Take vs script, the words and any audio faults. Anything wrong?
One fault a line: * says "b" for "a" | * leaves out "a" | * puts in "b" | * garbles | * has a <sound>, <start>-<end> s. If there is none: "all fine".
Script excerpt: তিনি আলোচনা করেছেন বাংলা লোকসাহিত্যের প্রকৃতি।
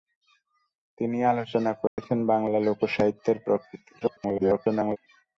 * has a dropout, 1.9-2.0 s
* garbles